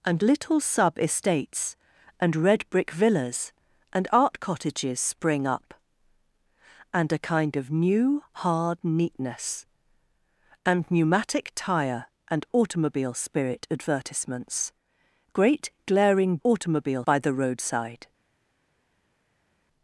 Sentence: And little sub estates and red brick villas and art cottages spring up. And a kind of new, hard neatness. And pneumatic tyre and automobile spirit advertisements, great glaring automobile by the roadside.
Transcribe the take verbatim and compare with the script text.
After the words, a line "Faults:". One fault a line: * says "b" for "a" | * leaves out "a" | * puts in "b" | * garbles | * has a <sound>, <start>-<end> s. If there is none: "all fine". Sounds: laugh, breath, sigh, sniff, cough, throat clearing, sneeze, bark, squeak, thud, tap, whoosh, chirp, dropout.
And little sub estates and red brick villas and art cottages spring up. And a kind of new, hard neatness. And pneumatic tyre and automobile spirit advertisements, great glaring automobile by the roadside.
Faults:
all fine